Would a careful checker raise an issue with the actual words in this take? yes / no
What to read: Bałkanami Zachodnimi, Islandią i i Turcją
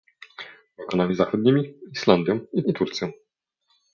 no